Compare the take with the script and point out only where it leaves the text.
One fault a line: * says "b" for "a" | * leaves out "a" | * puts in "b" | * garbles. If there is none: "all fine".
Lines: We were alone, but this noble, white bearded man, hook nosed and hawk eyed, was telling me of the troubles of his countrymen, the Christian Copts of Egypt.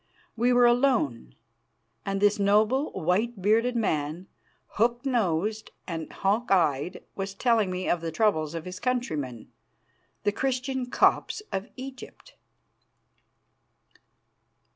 * says "and" for "but"